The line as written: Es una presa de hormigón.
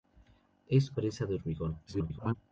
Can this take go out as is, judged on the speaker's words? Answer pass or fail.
fail